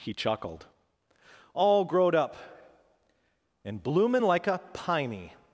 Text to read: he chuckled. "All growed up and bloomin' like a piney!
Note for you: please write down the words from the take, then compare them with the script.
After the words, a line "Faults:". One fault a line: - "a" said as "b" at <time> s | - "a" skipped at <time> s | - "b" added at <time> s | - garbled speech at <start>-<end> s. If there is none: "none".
he chuckled. "All growed up and bloomin' like a piney!
Faults:
none